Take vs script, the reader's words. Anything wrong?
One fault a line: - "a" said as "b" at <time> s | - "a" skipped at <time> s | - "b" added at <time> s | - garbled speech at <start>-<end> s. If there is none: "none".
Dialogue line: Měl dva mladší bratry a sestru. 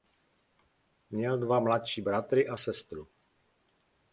none